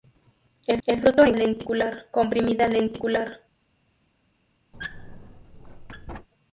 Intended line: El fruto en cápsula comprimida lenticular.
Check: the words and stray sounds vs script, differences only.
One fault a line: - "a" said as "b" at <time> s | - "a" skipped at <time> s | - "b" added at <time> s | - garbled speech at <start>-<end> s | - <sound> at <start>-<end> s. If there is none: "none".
- "el" added at 0.8 s
- "cápsula" said as "lenticular" at 1.3 s
- squeak at 4.7-6.3 s